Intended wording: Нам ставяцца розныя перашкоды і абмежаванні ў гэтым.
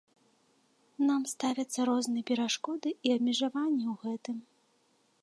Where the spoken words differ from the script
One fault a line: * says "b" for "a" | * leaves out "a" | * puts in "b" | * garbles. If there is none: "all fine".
all fine